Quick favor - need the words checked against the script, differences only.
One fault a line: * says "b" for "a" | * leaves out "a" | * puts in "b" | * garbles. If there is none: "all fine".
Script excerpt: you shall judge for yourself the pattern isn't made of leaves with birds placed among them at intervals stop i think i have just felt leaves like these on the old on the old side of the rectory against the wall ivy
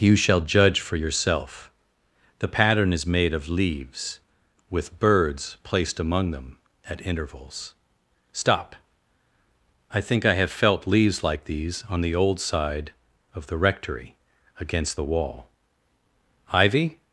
* says "is" for "isn't"
* leaves out "just"
* leaves out "on the old"